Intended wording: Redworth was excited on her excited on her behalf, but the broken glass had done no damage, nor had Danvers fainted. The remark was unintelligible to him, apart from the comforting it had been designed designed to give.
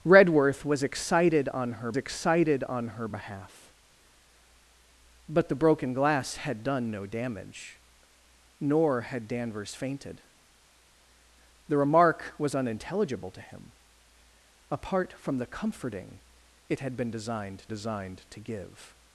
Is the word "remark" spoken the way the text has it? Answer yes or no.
yes